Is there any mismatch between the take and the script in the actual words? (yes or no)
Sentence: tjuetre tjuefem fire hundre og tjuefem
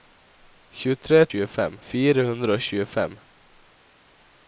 no